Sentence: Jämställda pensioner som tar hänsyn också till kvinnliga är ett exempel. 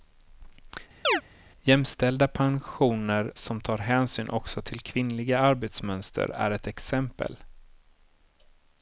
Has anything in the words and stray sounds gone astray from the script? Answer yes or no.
yes